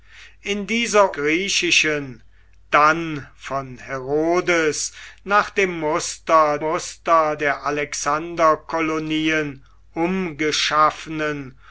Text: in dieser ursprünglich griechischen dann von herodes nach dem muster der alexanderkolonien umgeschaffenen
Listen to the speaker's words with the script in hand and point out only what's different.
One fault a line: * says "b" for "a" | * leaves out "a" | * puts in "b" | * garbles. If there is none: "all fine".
* leaves out "ursprünglich"
* puts in "muster"